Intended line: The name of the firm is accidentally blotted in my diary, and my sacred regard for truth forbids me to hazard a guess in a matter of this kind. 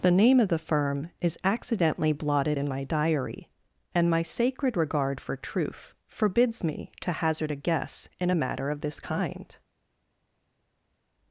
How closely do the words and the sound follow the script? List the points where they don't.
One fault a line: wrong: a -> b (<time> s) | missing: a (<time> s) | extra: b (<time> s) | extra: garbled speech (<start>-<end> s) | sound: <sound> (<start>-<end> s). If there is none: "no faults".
no faults